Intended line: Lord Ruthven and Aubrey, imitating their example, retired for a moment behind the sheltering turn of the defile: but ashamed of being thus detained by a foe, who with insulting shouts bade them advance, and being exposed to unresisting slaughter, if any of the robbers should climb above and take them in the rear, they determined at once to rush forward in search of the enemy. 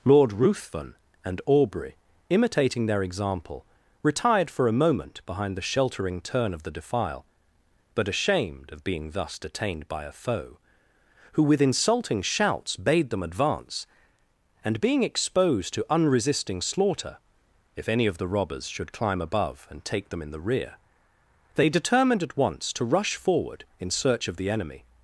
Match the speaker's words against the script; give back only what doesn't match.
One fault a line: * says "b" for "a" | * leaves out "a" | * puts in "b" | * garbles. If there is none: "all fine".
all fine